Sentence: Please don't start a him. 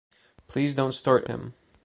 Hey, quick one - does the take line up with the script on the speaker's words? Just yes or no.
yes